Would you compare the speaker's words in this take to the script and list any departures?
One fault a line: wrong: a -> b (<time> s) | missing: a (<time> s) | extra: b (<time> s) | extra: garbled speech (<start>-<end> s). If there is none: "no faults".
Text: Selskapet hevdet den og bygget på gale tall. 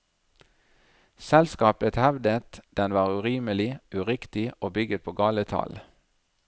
extra: var urimelig uriktig (2.9 s)